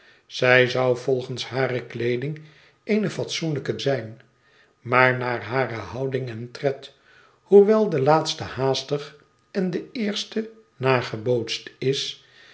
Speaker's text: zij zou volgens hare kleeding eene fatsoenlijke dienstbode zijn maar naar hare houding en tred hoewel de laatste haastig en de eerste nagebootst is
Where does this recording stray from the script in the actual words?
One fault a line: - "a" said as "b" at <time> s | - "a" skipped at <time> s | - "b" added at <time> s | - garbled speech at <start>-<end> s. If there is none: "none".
- "dienstbode" skipped at 3.8 s